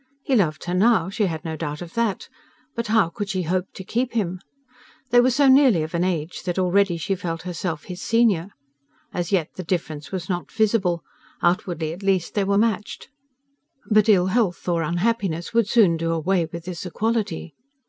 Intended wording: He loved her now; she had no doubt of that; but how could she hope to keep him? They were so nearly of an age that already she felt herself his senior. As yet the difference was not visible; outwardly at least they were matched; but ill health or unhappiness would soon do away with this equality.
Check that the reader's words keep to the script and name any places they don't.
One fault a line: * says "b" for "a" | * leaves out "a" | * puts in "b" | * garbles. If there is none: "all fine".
all fine